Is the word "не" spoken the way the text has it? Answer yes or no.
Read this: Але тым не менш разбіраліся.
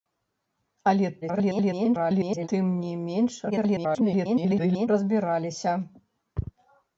yes